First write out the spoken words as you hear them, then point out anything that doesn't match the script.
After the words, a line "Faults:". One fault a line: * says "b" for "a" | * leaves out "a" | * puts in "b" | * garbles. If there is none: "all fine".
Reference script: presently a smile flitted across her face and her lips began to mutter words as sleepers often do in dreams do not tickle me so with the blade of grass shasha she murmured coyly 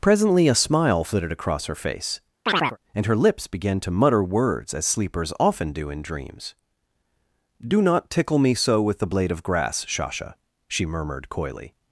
presently a smile flitted across her face and her lips began to mutter words as sleepers often do in dreams do not tickle me so with the blade of grass shasha she murmured coyly
Faults:
all fine